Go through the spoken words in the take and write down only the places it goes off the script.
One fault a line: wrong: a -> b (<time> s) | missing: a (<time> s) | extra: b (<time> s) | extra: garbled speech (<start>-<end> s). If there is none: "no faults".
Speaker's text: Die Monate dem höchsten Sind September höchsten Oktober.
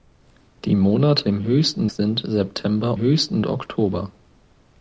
no faults